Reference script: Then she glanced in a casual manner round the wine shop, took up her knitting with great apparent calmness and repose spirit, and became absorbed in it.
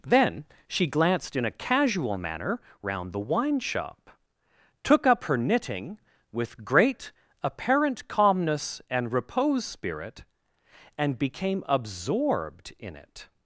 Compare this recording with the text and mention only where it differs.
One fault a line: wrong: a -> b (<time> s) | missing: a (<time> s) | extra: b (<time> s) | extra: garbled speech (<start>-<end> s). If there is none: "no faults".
no faults